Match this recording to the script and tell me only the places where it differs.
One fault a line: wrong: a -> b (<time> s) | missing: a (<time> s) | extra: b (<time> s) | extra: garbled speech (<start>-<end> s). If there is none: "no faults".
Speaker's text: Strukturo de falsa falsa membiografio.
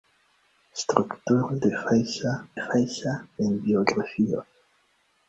no faults